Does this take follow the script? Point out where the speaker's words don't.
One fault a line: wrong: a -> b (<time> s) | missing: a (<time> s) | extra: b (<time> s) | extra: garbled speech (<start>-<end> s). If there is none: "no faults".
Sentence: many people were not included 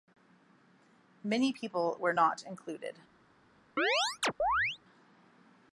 no faults